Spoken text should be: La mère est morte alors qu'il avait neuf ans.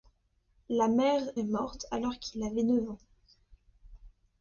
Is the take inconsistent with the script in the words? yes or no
no